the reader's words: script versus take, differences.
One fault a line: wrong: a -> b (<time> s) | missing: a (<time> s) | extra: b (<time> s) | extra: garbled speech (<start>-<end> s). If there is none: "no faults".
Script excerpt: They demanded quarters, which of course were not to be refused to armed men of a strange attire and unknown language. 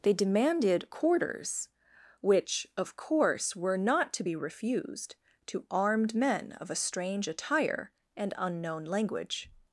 no faults